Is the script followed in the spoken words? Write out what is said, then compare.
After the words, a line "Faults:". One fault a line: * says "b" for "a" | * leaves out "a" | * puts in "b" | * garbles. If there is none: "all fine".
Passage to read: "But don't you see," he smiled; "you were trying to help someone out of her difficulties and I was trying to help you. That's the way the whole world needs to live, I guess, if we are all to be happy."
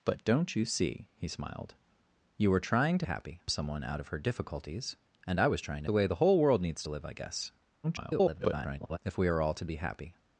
"But don't you see," he smiled; "you were trying to happy someone out of her difficulties and I was trying to the way the whole world needs to live, I guess, [garbled] if we are all to be happy."
Faults:
* says "happy" for "help"
* leaves out "help you That's"
* garbles